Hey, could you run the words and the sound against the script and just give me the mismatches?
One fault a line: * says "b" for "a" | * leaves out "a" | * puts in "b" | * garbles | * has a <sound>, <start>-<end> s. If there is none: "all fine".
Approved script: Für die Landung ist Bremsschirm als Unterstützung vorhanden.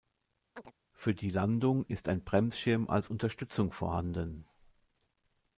* has a chirp, 0.6-0.7 s
* puts in "ein"